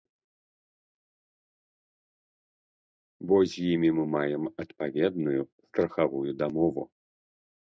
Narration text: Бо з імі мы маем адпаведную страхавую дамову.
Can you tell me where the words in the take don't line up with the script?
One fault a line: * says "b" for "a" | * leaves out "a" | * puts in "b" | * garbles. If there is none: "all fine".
all fine